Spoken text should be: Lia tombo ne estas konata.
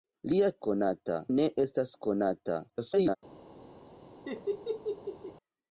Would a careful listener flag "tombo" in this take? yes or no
yes